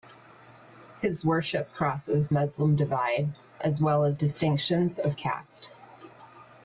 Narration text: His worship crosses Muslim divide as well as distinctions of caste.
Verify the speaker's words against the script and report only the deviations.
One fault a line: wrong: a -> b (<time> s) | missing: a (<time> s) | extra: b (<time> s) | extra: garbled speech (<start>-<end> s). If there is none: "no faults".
no faults